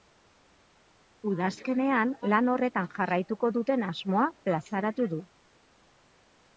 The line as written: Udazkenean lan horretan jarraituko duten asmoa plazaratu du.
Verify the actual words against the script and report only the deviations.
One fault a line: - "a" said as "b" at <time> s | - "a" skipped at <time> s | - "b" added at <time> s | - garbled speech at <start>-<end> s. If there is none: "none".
none